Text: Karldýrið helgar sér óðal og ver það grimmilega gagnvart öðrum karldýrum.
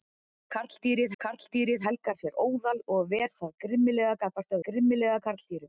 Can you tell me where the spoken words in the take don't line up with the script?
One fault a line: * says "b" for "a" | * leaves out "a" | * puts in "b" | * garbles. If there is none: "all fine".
* puts in "karldýrið"
* says "grimmilega" for "öðrum"